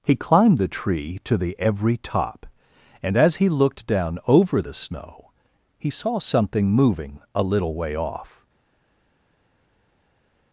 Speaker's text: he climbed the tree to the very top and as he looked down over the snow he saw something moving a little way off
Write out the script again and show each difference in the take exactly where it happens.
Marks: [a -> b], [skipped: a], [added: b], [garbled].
he climbed the tree to the [very -> every] top and as he looked down over the snow he saw something moving a little way off